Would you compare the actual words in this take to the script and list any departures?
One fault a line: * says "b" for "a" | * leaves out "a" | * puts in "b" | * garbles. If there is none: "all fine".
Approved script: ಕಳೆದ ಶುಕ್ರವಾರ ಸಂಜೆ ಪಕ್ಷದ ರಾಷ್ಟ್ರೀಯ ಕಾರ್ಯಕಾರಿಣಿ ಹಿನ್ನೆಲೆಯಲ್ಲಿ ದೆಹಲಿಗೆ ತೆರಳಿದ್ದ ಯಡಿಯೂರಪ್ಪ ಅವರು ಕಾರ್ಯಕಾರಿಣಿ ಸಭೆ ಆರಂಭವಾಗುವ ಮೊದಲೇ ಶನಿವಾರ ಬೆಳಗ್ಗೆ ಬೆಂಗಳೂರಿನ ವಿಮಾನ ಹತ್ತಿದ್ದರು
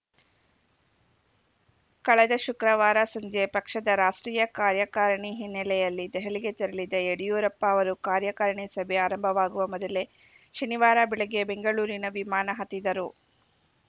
all fine